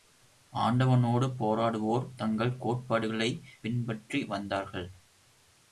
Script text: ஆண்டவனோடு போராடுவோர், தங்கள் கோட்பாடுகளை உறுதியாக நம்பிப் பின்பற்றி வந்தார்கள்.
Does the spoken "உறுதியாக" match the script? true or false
false